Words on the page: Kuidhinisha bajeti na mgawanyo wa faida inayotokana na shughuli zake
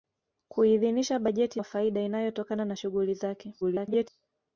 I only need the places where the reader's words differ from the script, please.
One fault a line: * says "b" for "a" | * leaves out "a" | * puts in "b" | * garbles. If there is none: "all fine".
* leaves out "na mgawanyo"
* garbles